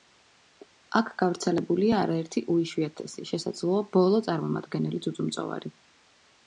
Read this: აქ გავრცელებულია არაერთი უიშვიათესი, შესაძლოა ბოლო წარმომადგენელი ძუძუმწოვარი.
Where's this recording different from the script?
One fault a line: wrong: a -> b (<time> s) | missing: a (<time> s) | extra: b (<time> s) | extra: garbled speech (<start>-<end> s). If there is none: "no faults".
no faults